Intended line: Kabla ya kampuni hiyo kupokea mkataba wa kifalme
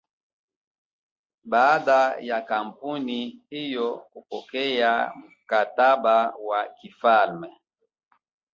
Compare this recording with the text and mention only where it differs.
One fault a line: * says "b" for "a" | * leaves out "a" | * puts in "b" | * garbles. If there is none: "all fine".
* says "Baada" for "Kabla"